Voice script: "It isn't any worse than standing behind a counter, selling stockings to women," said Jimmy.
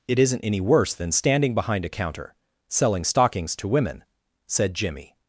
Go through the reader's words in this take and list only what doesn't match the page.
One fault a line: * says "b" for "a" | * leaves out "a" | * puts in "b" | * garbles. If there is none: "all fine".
all fine